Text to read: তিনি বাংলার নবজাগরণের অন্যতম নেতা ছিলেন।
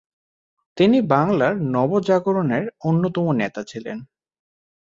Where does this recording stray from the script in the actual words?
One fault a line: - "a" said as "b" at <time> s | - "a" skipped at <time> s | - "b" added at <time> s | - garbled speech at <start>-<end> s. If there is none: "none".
none